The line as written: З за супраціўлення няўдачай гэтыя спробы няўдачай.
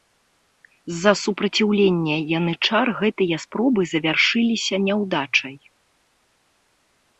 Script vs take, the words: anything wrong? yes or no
yes